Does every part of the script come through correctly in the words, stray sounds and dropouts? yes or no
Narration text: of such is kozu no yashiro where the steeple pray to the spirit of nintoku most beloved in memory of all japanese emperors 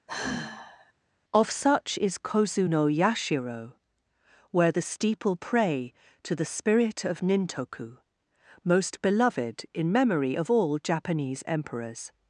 no